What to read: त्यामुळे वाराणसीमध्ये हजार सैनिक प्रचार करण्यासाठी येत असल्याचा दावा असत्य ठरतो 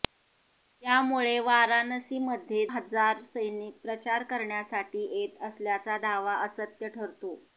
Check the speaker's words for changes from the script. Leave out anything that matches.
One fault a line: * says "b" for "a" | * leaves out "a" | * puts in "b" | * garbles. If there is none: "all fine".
all fine